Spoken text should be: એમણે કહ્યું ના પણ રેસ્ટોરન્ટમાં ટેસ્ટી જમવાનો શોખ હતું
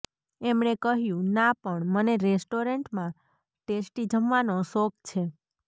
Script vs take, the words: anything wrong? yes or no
yes